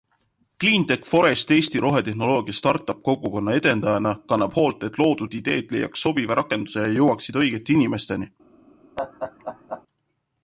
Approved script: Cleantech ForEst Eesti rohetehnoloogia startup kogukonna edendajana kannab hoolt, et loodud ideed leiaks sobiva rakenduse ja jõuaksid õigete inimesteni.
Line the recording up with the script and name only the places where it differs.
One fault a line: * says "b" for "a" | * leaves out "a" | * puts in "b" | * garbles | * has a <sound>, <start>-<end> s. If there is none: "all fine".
* has a laugh, 9.0-9.8 s